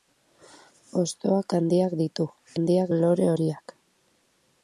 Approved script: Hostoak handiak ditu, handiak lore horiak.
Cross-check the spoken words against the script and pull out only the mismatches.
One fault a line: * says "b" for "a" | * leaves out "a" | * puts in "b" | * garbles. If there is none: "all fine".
all fine